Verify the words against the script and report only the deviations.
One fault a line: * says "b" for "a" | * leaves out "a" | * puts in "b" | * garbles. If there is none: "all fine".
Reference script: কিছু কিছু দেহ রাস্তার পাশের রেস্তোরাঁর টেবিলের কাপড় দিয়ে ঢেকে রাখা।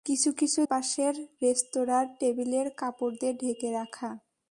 * leaves out "দেহ রাস্তার"